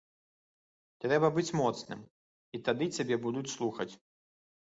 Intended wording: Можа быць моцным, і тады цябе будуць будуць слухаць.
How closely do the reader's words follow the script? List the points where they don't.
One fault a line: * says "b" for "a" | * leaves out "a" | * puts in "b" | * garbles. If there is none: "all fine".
* says "Трэба" for "Можа"
* leaves out "будуць"